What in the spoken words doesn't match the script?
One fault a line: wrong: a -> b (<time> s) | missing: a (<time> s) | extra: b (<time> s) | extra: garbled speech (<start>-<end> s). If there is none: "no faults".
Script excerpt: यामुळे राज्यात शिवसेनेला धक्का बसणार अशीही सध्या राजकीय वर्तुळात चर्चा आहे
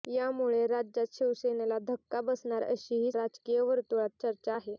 missing: सध्या (3.1 s)